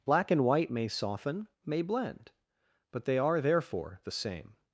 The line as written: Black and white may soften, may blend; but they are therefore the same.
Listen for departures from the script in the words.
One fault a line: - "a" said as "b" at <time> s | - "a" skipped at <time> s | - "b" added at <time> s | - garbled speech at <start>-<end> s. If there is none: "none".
none